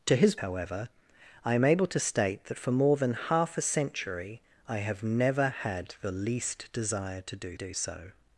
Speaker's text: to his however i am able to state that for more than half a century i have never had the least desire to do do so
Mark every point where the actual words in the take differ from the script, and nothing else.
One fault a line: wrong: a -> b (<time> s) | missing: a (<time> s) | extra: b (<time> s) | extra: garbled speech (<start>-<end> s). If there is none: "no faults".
no faults